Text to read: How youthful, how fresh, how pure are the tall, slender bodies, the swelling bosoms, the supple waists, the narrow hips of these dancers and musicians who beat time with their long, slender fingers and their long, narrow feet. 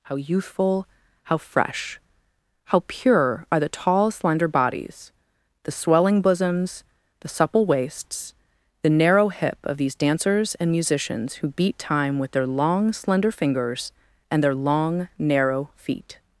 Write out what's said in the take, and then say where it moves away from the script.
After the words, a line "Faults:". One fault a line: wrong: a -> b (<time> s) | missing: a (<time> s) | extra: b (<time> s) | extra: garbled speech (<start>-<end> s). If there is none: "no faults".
How youthful, how fresh, how pure are the tall, slender bodies, the swelling bosoms, the supple waists, the narrow hip of these dancers and musicians who beat time with their long, slender fingers and their long, narrow feet.
Faults:
wrong: hips -> hip (9.3 s)